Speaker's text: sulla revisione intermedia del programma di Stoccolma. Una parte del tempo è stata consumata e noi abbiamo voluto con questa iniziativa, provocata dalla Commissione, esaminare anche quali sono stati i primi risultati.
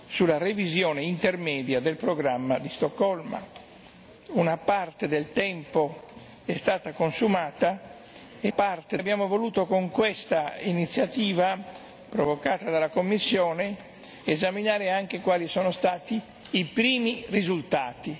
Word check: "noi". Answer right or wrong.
wrong